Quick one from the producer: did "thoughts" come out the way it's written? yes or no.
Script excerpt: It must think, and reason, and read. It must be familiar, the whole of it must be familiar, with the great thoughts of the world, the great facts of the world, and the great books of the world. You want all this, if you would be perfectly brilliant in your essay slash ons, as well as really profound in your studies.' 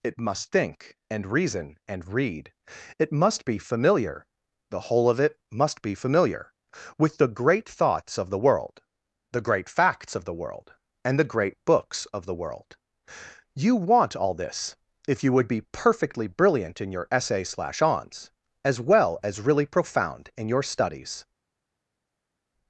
yes